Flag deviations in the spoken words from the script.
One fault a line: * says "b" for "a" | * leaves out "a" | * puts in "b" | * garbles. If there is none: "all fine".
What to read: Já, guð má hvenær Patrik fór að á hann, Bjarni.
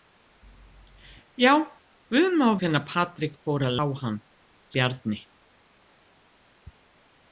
all fine